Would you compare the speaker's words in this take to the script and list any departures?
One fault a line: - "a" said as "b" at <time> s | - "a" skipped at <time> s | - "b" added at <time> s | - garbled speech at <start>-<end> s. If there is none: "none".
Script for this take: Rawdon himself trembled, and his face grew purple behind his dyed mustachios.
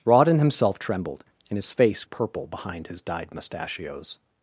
- "grew" skipped at 2.0 s